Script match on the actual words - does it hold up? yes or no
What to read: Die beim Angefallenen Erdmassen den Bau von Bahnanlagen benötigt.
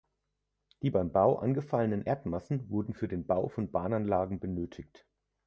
no